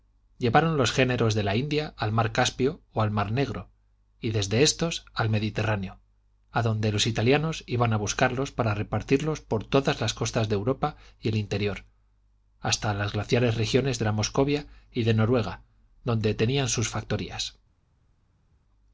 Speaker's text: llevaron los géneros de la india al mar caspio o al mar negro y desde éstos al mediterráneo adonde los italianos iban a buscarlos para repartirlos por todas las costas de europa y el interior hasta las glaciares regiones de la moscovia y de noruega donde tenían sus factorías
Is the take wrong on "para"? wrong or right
right